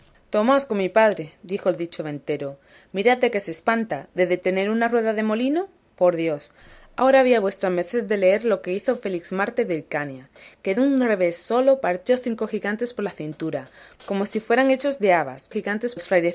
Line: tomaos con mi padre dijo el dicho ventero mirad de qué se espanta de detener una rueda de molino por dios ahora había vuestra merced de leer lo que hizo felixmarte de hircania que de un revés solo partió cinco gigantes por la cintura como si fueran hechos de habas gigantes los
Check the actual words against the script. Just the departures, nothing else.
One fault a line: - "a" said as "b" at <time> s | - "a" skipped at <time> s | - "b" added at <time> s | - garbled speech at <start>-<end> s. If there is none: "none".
none